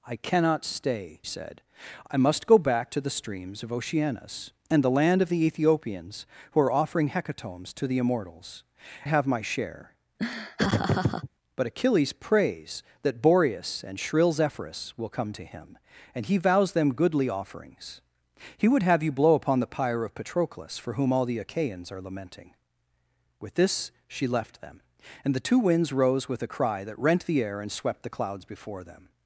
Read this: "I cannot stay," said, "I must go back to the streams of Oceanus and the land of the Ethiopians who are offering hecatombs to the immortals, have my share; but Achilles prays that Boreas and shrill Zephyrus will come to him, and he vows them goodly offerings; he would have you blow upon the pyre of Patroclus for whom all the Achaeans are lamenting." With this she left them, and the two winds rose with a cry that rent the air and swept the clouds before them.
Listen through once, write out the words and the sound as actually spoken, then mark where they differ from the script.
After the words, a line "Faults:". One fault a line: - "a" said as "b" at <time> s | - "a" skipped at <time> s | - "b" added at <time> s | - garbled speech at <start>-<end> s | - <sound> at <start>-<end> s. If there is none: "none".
"I cannot stay," said, "I must go back to the streams of Oceanus and the land of the Ethiopians who are offering hecatombs to the immortals, have my share; but Achilles prays that Boreas and shrill Zephyrus will come to him, and he vows them goodly offerings; he would have you blow upon the pyre of Patroclus for whom all the Achaeans are lamenting." With this she left them, and the two winds rose with a cry that rent the air and swept the clouds before them.
Faults:
- laugh at 10.2-11.3 s